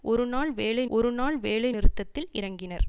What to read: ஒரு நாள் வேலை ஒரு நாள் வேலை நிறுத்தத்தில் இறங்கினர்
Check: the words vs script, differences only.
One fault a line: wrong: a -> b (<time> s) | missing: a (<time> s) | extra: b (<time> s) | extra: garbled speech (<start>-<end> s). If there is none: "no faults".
no faults